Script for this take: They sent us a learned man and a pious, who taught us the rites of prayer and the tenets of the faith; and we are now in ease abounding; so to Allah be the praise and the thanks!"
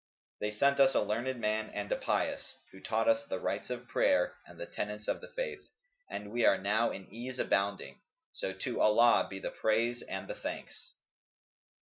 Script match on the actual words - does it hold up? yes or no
yes